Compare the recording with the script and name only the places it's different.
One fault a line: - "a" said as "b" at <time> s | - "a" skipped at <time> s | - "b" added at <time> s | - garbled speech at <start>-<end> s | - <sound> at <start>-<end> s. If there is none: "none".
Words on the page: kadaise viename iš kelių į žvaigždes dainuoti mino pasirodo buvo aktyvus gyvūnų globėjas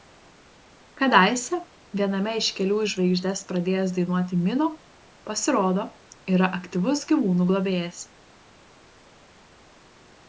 - "pradėjęs" added at 3.5 s
- "buvo" said as "yra" at 6.4 s